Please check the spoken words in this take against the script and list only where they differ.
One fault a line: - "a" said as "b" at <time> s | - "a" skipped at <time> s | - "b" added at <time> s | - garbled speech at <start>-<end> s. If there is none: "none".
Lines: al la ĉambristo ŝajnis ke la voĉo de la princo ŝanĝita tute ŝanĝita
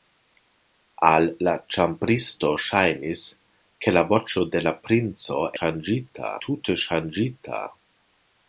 none